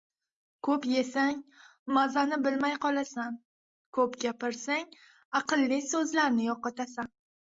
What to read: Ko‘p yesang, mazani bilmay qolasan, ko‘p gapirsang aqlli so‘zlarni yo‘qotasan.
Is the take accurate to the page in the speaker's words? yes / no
yes